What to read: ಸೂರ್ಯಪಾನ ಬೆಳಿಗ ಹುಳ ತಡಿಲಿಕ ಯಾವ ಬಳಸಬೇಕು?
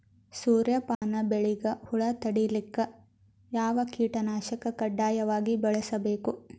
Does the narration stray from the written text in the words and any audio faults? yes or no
yes